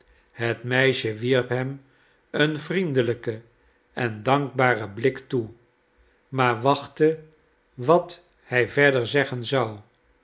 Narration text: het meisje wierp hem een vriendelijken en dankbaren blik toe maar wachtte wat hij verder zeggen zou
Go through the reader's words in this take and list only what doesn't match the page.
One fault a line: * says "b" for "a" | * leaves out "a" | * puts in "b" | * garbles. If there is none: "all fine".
all fine